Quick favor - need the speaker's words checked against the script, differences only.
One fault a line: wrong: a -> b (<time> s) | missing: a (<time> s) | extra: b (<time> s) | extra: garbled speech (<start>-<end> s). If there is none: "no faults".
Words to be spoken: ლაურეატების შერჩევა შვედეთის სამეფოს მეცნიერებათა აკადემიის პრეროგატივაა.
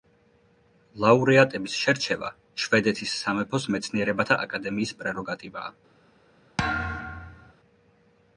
no faults